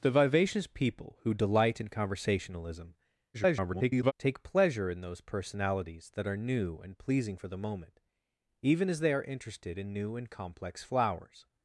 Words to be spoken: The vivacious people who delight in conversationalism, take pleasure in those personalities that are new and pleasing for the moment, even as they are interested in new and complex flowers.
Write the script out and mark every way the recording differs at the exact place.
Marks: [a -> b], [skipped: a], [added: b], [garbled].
The vivacious people who delight in conversationalism, [garbled] take pleasure in those personalities that are new and pleasing for the moment, even as they are interested in new and complex flowers.